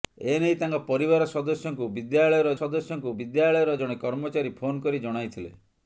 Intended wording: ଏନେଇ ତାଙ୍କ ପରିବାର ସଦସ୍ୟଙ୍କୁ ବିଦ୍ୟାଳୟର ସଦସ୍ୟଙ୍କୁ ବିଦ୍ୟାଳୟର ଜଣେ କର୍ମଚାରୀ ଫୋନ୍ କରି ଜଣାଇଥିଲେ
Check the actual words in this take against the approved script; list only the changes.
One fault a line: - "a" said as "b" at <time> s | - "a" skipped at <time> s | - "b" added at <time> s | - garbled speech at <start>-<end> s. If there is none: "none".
none